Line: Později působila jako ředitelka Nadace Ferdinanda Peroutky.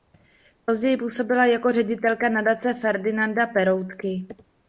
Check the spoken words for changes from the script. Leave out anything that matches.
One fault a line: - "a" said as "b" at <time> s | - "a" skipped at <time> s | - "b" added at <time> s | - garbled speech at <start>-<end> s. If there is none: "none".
none